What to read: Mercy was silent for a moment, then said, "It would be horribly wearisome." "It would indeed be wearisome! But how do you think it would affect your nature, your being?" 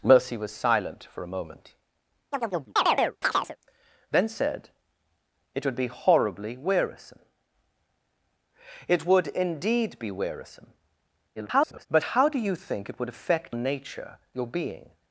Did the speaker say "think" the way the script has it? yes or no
yes